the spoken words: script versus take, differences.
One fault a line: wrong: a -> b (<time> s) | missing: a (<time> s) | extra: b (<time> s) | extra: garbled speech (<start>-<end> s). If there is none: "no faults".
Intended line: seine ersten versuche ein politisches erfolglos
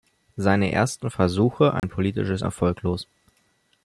no faults